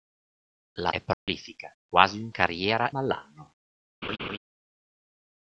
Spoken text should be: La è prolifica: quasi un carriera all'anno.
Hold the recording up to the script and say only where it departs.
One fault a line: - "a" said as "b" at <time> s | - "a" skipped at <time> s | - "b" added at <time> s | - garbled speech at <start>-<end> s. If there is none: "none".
none